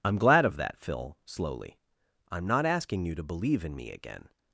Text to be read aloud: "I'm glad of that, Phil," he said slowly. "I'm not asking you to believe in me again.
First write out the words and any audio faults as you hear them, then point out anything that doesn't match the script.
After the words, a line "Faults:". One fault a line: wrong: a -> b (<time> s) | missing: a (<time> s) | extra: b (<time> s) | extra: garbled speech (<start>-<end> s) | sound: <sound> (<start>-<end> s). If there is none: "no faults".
"I'm glad of that, Phil," slowly. "I'm not asking you to believe in me again.
Faults:
missing: he said (1.1 s)